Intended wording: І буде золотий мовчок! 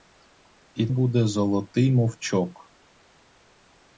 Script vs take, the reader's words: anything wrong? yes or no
no